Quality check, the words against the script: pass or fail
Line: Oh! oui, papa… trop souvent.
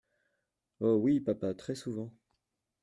fail